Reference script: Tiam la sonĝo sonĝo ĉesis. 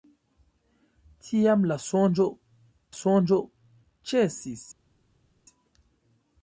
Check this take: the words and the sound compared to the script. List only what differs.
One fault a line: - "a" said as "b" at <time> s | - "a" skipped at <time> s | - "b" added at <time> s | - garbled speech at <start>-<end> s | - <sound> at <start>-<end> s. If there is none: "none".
none